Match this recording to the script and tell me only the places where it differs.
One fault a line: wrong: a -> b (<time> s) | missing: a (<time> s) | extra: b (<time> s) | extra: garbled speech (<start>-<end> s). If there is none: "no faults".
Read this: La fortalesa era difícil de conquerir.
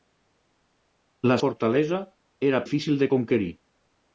no faults